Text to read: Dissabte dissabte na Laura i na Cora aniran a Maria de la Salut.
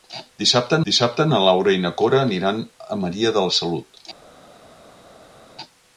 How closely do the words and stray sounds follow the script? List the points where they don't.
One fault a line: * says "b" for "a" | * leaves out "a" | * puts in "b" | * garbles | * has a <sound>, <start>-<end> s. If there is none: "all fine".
all fine